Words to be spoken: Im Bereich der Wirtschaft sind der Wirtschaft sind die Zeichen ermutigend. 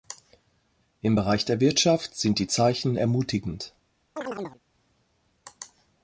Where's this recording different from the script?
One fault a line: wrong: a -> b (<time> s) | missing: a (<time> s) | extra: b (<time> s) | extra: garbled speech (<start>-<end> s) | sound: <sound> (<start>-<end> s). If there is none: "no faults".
missing: der Wirtschaft sind (2.4 s)
sound: chirp (4.2-4.6 s)